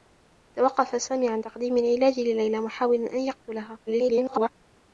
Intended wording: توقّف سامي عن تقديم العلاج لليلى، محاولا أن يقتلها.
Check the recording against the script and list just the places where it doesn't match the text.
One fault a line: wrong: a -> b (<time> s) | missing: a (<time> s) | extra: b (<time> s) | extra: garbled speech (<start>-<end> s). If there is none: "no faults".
extra: garbled speech (3.9-4.5 s)